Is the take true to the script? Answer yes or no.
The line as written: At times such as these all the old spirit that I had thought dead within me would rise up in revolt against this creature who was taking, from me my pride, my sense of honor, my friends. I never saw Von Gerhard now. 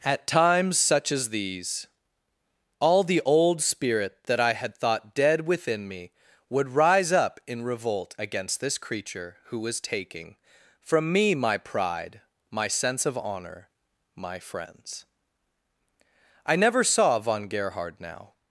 yes